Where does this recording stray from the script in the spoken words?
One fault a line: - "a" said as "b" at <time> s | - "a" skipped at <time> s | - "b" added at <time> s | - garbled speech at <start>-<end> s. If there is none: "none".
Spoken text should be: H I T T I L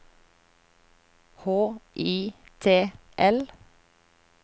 - "T I" skipped at 2.9 s